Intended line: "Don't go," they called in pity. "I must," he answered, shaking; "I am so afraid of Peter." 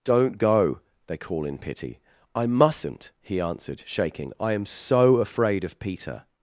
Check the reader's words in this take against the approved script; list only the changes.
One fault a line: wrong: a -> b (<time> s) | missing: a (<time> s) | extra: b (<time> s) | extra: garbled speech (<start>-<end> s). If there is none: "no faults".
wrong: called -> call (1.2 s)
wrong: must -> mustn't (2.5 s)